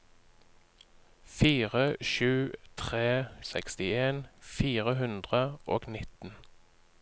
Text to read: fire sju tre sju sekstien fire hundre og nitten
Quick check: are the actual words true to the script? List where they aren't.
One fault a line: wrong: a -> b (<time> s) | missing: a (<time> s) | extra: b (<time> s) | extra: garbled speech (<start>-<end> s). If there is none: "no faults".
missing: sju (3.1 s)